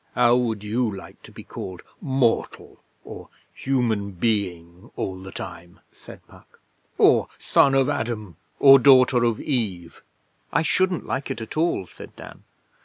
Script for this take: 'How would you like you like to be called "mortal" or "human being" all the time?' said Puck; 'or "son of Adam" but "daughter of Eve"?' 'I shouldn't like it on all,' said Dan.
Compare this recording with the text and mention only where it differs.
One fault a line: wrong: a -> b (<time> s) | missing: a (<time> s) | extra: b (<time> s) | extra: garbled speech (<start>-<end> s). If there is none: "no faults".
missing: you like (1.2 s)
wrong: but -> or (8.6 s)
wrong: on -> at (11.4 s)